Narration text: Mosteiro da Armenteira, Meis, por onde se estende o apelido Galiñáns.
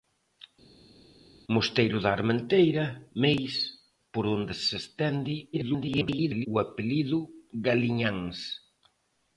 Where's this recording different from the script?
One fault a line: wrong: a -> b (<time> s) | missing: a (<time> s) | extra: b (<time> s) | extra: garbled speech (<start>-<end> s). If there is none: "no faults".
extra: garbled speech (5.5-6.5 s)